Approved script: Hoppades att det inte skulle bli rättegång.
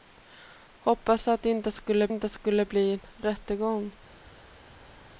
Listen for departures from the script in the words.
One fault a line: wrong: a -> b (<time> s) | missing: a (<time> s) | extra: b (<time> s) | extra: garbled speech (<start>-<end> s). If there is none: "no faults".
extra: inte skulle (2.1 s)